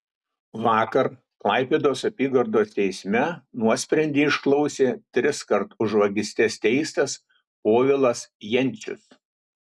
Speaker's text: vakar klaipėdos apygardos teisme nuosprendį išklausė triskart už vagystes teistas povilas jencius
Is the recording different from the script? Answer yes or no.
no